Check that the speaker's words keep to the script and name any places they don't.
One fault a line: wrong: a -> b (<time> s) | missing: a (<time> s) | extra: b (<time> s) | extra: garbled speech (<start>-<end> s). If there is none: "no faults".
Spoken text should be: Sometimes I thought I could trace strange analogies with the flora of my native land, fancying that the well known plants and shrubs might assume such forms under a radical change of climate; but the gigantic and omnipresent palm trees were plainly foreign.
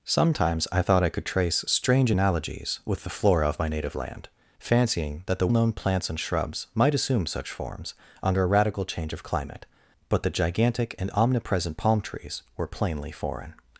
missing: well (5.5 s)